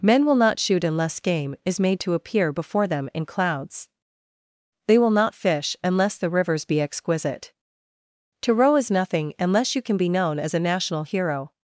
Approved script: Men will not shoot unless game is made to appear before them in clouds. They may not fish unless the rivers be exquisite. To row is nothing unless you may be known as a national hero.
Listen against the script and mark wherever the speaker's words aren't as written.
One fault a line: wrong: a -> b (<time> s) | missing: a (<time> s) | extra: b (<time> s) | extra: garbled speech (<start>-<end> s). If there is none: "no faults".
wrong: may -> will (5.0 s)
wrong: may -> can (9.8 s)